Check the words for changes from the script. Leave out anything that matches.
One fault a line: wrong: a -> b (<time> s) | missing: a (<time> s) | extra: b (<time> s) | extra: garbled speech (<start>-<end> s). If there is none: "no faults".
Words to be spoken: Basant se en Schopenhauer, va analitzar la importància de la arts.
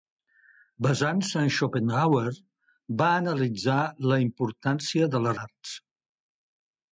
no faults